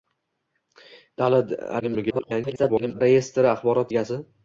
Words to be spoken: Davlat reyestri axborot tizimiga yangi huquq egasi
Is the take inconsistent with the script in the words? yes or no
yes